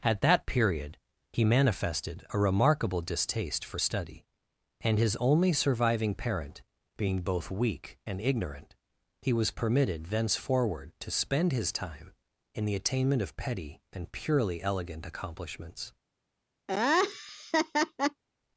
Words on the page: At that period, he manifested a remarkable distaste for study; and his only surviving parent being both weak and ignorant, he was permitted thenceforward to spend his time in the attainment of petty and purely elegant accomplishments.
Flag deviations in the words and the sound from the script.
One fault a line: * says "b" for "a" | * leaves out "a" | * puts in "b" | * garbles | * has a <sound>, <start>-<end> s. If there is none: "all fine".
* has a laugh, 16.7-18.2 s